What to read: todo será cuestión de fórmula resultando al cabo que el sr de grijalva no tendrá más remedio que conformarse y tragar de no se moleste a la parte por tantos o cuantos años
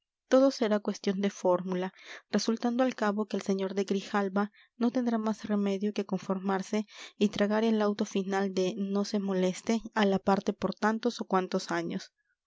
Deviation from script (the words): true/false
true